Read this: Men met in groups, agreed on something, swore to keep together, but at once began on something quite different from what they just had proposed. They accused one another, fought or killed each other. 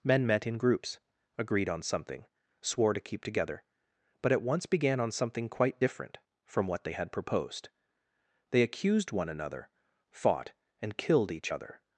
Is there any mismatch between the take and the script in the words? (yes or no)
yes